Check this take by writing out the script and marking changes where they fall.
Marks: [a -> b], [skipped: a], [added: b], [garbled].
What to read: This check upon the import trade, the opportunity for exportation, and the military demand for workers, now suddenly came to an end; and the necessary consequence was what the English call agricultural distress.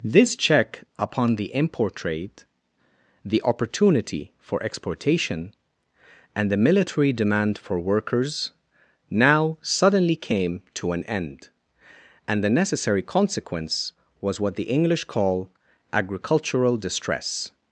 This check upon the import trade, the opportunity for exportation, and the military demand for workers, now suddenly came to an end; and the necessary consequence was what the English call agricultural distress.